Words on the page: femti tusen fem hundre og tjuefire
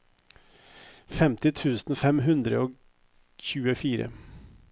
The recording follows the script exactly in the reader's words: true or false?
true